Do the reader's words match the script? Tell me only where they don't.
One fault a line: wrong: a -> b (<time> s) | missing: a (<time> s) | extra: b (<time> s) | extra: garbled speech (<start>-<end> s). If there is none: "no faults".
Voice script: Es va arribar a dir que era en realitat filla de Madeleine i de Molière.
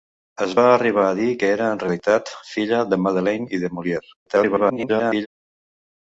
extra: garbled speech (4.3-5.3 s)